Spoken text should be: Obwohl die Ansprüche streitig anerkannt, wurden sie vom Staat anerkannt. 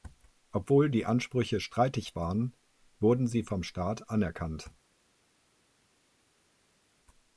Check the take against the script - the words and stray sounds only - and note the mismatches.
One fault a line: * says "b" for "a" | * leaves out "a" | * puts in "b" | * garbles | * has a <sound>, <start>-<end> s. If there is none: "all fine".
* says "waren" for "anerkannt"